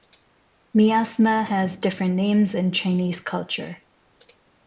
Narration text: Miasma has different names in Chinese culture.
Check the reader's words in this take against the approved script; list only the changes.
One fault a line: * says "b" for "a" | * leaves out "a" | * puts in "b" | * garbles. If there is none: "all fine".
all fine